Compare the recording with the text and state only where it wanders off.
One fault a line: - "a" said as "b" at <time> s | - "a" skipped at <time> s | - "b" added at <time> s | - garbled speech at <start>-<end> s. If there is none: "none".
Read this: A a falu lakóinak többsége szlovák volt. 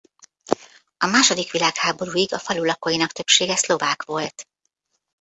- "második világháborúig" added at 1.1 s